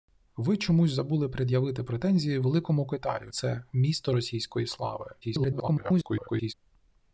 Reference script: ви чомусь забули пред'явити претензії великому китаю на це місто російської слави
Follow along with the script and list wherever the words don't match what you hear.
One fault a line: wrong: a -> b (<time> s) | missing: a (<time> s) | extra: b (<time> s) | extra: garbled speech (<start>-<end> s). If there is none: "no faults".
missing: на (3.3 s)
extra: garbled speech (5.2-6.5 s)